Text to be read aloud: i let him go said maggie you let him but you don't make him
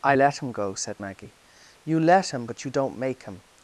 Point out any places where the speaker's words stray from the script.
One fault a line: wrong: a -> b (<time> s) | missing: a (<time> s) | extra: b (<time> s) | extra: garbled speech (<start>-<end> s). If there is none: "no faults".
no faults